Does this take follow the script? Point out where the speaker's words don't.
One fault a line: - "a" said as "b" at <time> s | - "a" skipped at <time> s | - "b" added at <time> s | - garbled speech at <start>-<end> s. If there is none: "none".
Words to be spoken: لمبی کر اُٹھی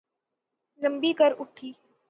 none